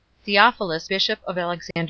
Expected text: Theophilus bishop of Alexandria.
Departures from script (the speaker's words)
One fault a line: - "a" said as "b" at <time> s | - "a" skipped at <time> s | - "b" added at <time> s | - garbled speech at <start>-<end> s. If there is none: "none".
none